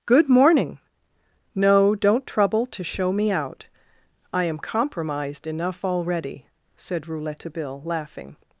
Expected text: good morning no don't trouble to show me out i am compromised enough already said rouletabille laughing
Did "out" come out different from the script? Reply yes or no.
no